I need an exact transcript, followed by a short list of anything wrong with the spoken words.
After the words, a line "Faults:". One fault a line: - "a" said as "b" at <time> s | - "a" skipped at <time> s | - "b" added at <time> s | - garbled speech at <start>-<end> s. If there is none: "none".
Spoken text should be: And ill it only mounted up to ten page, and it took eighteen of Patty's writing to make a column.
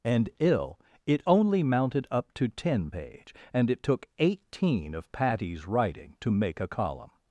And ill it only mounted up to ten page, and it took eighteen of Patty's writing to make a column.
Faults:
none